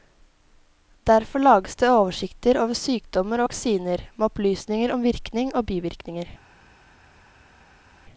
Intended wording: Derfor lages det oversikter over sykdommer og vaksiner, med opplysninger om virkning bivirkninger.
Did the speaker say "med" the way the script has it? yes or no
yes